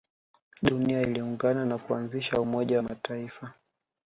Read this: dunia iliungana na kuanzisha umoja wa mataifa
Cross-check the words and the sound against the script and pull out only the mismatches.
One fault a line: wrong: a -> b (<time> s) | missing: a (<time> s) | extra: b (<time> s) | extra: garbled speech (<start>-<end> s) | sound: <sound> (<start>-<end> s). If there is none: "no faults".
no faults